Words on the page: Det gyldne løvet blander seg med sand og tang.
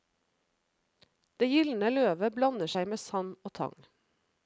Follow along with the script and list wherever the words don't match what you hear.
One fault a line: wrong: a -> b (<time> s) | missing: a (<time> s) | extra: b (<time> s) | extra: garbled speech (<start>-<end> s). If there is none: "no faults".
no faults